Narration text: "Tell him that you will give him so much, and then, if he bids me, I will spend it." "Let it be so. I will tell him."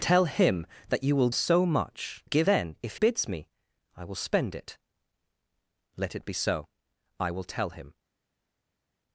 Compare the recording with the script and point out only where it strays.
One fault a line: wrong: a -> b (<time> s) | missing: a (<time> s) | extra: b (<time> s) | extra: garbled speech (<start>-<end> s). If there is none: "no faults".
missing: give him (1.3 s)
wrong: and -> give (2.2 s)
missing: he (3.0 s)